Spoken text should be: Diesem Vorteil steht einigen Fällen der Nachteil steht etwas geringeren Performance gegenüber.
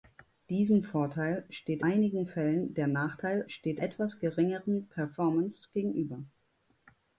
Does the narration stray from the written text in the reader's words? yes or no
no